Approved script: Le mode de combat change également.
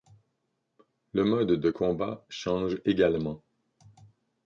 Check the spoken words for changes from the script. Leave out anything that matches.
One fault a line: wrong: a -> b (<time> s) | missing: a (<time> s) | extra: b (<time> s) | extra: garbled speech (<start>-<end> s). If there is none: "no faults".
no faults